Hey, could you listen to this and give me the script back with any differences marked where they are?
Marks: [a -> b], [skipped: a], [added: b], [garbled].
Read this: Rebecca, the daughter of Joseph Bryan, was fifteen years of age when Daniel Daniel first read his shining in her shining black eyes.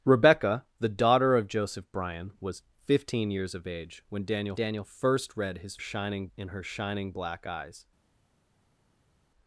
Rebecca, the daughter of Joseph Bryan, was fifteen years of age when Daniel Daniel first read his shining in her shining black eyes.